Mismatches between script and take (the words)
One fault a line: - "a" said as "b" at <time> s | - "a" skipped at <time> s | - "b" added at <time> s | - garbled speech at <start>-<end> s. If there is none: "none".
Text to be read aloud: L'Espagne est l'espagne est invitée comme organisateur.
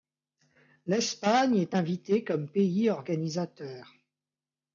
- "l'espagne est" skipped at 1.8 s
- "pays" added at 2.5 s